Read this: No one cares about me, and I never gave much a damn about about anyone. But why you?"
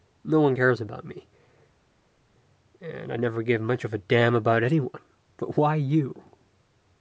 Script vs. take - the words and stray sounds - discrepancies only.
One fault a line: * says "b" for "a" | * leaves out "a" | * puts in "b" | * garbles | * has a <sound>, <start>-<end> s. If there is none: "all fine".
* puts in "of"
* leaves out "about"